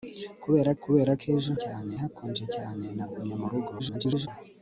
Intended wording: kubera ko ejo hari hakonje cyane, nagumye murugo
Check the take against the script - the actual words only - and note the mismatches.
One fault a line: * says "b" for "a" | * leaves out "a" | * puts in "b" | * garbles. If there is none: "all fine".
* puts in "kubera"
* says "cyane" for "hari"
* garbles